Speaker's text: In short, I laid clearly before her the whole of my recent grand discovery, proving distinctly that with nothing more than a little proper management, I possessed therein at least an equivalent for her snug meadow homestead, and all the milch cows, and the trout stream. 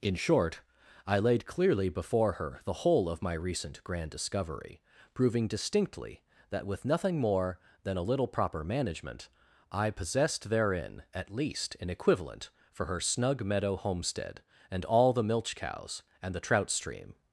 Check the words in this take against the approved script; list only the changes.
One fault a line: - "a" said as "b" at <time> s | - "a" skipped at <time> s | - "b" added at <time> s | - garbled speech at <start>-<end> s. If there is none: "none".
none